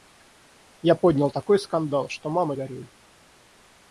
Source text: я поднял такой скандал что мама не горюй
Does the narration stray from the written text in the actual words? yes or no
yes